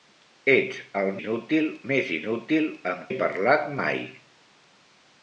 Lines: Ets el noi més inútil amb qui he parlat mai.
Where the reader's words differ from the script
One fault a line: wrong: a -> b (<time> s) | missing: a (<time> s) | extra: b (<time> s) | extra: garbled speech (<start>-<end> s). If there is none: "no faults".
wrong: noi -> inútil (1.2 s)
missing: qui (3.1 s)